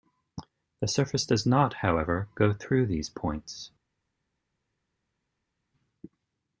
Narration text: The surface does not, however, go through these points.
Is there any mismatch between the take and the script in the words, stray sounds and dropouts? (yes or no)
no